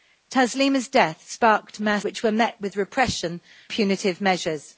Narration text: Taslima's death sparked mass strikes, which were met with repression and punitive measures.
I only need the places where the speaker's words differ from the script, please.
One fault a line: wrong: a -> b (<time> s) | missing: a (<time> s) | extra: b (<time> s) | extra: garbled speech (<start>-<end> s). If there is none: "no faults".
missing: strikes (2.0 s)
missing: and (3.4 s)